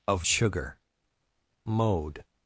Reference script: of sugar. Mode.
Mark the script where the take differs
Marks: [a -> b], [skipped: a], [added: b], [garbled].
of sugar. Mode.